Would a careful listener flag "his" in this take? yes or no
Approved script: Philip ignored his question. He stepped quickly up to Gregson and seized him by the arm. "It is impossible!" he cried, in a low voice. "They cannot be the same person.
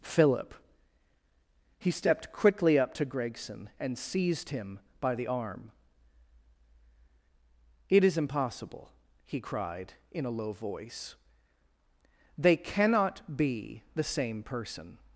yes